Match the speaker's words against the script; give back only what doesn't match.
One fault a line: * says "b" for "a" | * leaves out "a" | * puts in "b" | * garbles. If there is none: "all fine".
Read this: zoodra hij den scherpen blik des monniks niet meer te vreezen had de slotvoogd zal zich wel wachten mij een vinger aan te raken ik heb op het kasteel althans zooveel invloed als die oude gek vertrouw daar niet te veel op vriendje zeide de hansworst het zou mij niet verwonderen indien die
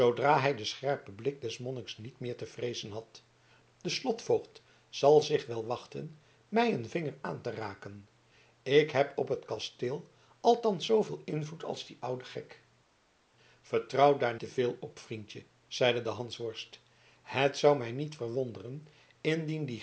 * leaves out "niet"